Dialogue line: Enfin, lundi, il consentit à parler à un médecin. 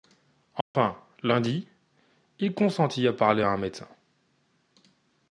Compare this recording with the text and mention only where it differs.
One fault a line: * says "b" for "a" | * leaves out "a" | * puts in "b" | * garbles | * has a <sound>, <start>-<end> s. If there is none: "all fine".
* has a dropout, 0.6-0.7 s